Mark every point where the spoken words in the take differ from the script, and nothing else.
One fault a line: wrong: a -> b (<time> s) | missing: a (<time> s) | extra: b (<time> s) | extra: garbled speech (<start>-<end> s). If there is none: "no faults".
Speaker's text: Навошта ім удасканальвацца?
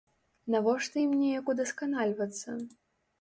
extra: неяк (1.2 s)